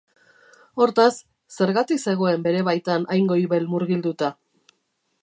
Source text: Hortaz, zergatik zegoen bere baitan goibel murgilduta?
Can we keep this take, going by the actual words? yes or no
no